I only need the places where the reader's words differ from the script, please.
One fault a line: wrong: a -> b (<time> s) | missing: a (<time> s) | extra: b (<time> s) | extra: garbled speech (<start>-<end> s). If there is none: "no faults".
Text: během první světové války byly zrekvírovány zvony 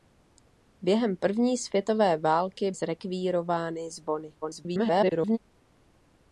missing: byly (2.7 s)
extra: garbled speech (4.4-5.4 s)